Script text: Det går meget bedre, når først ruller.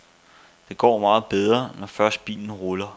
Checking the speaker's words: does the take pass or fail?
fail